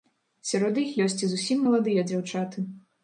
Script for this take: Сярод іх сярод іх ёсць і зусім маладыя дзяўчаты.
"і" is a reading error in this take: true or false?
false